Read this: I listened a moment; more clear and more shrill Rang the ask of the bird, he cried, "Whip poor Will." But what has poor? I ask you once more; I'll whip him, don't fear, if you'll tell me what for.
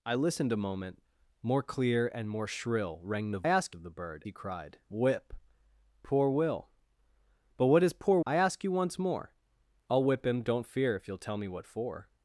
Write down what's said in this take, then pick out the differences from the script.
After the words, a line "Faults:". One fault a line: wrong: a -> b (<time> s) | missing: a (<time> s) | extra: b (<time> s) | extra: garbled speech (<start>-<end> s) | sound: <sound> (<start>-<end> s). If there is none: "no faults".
I listened a moment; more clear and more shrill Rang the ask of the bird, he cried, "Whip poor Will." But what has poor? I ask you once more; I'll whip him, don't fear, if you'll tell me what for.
Faults:
no faults